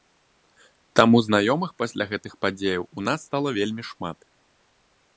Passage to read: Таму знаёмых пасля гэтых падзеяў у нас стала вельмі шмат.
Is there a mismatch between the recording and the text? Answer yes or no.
no